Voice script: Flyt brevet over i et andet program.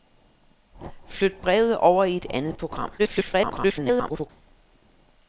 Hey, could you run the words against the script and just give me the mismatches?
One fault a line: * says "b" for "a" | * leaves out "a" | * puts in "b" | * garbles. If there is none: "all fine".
* garbles